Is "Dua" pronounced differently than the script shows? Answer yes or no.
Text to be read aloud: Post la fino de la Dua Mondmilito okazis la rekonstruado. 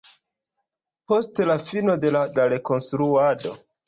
yes